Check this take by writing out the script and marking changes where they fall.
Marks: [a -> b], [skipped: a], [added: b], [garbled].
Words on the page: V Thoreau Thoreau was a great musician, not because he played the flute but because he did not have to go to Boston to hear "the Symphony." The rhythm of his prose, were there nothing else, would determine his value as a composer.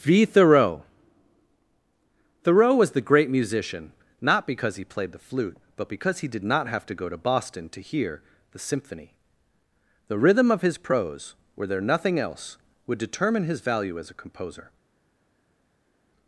V Thoreau Thoreau was [a -> the] great musician, not because he played the flute but because he did not have to go to Boston to hear "the Symphony." The rhythm of his prose, were there nothing else, would determine his value as a composer.